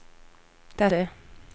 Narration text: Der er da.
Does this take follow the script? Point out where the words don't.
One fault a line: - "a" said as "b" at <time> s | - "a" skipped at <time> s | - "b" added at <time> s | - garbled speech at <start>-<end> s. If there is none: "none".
none